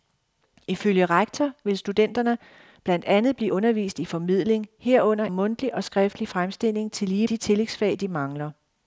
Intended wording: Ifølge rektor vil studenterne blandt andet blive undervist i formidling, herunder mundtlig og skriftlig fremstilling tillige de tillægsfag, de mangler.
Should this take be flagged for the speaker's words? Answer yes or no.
no